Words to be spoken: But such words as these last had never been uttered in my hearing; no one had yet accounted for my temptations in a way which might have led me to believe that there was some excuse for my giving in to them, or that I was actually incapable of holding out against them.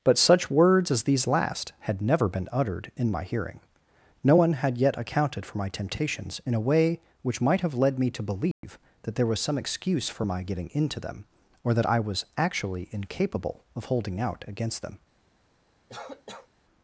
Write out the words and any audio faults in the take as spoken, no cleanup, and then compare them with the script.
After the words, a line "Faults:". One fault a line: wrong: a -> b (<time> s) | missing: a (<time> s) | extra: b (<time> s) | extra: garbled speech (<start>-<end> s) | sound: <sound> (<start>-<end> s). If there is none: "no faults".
But such words as these last had never been uttered in my hearing; no one had yet accounted for my temptations in a way which might have led me to believe that there was some excuse for my getting into them, or that I was actually incapable of holding out against them.
Faults:
sound: dropout (8.5-8.6 s)
wrong: giving in to -> getting into (10.4 s)
sound: cough (15.9-16.5 s)